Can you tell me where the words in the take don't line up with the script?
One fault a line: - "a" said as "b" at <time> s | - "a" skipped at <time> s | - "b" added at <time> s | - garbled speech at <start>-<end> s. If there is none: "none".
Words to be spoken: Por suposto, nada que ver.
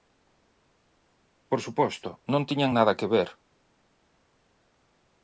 - "non tiñan" added at 2.3 s